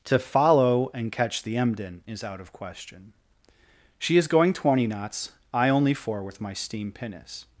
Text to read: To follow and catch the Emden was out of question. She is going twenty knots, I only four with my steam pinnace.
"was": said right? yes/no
no